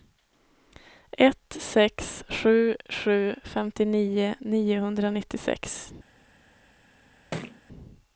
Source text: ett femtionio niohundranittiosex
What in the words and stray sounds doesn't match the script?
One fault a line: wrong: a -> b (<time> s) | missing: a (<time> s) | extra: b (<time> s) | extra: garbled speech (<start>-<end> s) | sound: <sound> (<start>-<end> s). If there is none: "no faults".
extra: sex sju sju (1.6 s)
sound: thud (7.3-7.6 s)